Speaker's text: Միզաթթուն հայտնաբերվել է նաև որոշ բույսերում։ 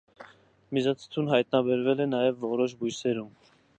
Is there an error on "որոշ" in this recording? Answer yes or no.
no